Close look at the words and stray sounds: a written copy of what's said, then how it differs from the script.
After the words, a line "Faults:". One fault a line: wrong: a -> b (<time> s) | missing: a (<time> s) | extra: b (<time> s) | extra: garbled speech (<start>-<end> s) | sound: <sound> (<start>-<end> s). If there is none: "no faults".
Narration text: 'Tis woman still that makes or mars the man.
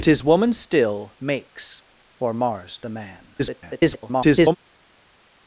'Tis woman still makes or mars the man. [garbled]
Faults:
missing: that (1.1 s)
extra: garbled speech (3.4-4.6 s)